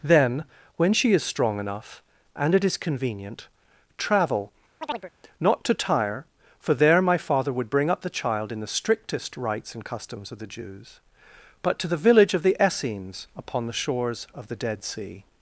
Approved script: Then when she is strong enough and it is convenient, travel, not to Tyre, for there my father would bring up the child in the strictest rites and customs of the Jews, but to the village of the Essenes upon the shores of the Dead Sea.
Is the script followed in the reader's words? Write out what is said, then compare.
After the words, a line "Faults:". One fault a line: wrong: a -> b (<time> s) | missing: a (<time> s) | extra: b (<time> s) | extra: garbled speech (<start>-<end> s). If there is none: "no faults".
Then when she is strong enough and it is convenient, travel, not to Tyre, for there my father would bring up the child in the strictest rites and customs of the Jews, but to the village of the Essenes upon the shores of the Dead Sea.
Faults:
no faults